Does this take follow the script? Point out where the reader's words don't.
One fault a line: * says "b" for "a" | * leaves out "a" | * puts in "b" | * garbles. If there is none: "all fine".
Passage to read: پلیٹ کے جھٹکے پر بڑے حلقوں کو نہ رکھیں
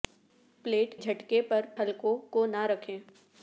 * leaves out "کے"
* leaves out "بڑے"